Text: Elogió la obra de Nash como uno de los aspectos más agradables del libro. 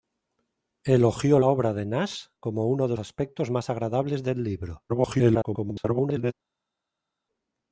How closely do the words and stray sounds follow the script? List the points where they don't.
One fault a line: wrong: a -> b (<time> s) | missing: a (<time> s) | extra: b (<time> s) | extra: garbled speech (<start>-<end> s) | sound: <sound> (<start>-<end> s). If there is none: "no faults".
missing: la (1.4 s)
missing: los (3.0 s)
extra: garbled speech (4.9-6.3 s)